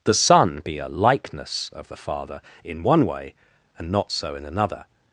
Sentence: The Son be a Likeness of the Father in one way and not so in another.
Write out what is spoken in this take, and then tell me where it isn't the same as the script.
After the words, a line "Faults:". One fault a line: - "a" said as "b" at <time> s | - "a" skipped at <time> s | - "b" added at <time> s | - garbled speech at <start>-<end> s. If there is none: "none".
The Son be a Likeness of the Father in one way and not so in another.
Faults:
none